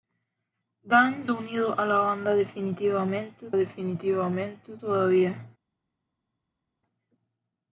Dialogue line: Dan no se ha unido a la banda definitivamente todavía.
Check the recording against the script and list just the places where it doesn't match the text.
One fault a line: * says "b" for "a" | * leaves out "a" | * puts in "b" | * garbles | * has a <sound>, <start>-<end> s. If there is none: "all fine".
* leaves out "no se"
* puts in "definitivamente"